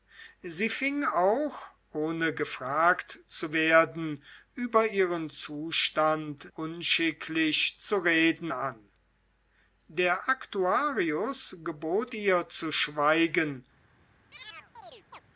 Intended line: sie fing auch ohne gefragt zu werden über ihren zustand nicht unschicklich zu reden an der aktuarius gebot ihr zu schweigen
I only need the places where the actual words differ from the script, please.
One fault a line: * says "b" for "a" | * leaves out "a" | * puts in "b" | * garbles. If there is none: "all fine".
* leaves out "nicht"